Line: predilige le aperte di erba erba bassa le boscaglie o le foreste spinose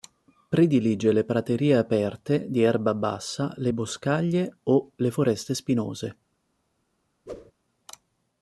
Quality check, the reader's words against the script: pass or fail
fail